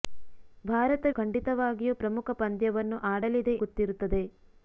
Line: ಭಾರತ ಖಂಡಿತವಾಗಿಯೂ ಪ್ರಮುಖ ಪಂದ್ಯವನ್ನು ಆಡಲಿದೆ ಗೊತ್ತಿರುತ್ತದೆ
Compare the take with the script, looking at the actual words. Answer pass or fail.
pass